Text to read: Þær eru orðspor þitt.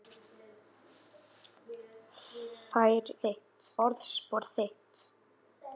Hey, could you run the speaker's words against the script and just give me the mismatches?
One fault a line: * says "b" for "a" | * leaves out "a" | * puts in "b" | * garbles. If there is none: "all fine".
* says "þitt" for "eru"